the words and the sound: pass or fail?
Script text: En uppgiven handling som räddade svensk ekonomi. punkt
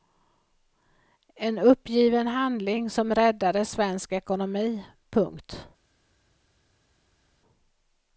pass